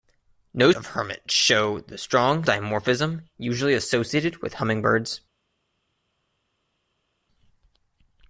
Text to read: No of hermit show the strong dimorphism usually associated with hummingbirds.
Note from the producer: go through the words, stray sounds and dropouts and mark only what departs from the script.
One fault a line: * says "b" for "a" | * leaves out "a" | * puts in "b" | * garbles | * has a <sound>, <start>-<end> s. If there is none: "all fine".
all fine